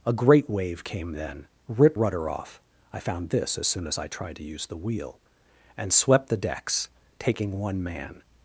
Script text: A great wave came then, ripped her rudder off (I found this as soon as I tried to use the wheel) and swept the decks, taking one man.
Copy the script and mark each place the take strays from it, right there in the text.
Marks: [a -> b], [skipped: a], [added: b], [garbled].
A great wave came then, ripped [skipped: her] rudder off (I found this as soon as I tried to use the wheel) and swept the decks, taking one man.